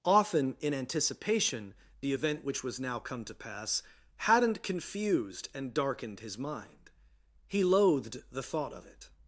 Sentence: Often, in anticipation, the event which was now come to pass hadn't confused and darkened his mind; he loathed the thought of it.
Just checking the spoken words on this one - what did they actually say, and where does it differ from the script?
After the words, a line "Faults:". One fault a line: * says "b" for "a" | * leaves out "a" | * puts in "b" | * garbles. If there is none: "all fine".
Often, in anticipation, the event which was now come to pass hadn't confused and darkened his mind; he loathed the thought of it.
Faults:
all fine